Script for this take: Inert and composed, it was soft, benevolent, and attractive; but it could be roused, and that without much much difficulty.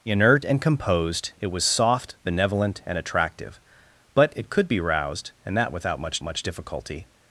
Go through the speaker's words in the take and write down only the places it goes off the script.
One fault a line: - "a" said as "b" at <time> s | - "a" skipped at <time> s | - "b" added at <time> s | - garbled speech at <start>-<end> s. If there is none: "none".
none